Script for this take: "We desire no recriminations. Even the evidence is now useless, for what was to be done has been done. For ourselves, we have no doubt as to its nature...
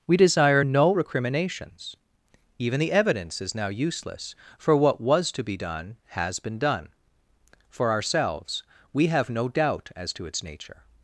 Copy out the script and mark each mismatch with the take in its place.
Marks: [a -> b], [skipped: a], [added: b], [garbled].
"We desire no recriminations. Even the evidence is now useless, for what was to be done has been done. For ourselves, we have no doubt as to its nature...